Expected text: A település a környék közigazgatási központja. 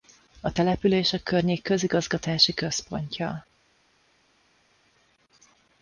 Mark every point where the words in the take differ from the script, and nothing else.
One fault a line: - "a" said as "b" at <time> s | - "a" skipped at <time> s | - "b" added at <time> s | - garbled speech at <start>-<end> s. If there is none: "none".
none